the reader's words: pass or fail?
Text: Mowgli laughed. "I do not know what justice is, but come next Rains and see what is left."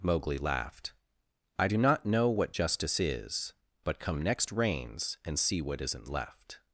fail